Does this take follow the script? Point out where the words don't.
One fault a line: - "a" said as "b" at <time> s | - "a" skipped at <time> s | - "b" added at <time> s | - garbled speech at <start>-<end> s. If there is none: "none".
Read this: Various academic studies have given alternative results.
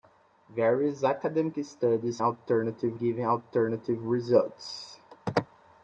- "have" said as "alternative" at 2.2 s